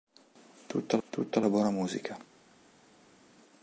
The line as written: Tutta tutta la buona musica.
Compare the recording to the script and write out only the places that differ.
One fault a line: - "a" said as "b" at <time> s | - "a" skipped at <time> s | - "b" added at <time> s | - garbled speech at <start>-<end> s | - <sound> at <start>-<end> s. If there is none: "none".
none